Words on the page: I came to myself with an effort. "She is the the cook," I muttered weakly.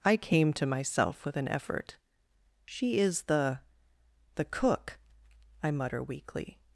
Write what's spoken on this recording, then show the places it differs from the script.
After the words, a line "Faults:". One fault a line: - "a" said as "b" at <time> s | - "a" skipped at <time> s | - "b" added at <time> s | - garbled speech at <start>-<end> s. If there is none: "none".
I came to myself with an effort. "She is the the cook," I mutter weakly.
Faults:
- "muttered" said as "mutter" at 5.7 s